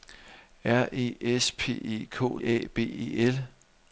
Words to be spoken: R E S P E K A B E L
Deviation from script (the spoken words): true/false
false